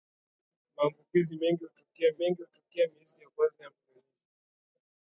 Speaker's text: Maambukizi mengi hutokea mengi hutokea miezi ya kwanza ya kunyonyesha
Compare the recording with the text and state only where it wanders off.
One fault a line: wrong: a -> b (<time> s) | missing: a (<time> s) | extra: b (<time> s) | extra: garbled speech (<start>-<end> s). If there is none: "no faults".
no faults